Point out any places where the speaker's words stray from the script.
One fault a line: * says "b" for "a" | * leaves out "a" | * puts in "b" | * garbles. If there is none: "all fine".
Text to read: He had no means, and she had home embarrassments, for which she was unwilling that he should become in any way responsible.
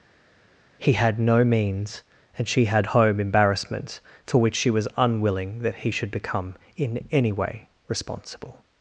all fine